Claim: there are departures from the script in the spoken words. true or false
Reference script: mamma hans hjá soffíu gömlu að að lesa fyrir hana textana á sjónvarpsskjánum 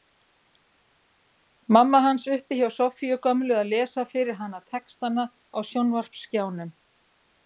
true